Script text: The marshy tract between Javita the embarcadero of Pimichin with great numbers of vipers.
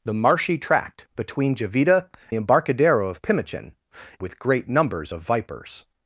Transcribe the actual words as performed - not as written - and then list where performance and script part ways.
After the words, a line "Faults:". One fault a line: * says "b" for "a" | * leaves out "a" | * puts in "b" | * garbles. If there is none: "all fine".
The marshy tract between Javita the embarcadero of Pimichin with great numbers of vipers.
Faults:
all fine